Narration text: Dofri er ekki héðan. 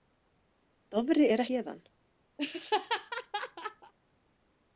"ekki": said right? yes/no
no